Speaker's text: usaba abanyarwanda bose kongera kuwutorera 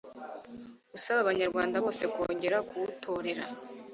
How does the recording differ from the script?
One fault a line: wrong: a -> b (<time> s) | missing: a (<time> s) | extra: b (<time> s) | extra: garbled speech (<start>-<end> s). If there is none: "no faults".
no faults